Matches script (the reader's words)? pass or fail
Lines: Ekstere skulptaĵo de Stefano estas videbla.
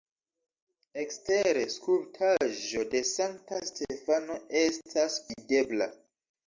fail